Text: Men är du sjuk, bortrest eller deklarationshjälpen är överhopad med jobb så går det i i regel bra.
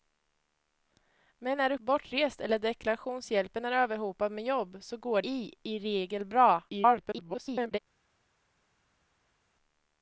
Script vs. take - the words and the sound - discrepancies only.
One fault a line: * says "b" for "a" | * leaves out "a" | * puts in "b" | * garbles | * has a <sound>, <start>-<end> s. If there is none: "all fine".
* leaves out "sjuk"
* leaves out "det"
* garbles